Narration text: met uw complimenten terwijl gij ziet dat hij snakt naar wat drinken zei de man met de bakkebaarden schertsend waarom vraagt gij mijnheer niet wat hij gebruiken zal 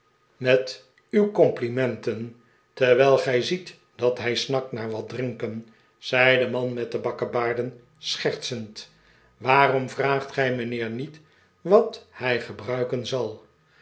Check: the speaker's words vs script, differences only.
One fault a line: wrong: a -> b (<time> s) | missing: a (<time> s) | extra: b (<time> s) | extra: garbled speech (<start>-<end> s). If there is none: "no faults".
no faults